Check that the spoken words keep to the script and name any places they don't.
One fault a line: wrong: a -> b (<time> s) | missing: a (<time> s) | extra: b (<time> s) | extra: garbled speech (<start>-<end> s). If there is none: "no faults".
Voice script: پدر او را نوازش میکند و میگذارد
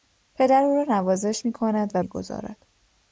no faults